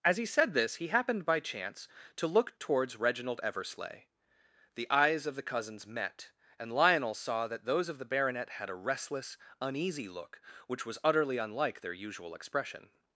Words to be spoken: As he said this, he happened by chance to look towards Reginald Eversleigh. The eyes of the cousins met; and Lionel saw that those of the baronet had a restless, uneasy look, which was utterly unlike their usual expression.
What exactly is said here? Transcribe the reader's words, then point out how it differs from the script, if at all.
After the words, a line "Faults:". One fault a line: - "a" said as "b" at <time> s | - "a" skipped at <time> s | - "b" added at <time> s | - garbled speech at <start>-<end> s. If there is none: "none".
As he said this, he happened by chance to look towards Reginald Eversleigh. The eyes of the cousins met; and Lionel saw that those of the baronet had a restless, uneasy look, which was utterly unlike their usual expression.
Faults:
none